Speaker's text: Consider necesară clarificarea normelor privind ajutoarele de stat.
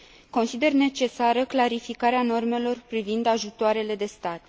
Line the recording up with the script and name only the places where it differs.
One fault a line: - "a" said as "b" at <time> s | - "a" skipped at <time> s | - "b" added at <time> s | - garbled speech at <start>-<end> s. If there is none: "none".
none